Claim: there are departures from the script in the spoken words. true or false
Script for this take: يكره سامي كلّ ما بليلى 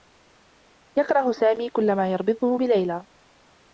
true